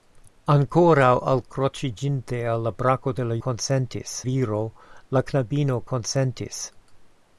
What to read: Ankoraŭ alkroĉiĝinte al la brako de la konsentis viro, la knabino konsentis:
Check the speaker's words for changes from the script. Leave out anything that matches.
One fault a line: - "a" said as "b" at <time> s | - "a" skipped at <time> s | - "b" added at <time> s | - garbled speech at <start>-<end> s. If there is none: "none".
none